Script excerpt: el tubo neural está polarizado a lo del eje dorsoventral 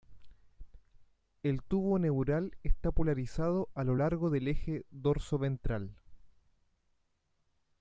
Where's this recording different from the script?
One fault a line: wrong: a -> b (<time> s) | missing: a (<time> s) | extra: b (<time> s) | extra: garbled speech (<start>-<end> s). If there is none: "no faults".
extra: largo (3.9 s)